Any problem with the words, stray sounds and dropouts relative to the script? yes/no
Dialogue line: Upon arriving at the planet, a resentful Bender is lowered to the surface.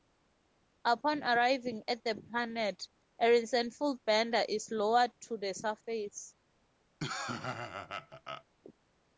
yes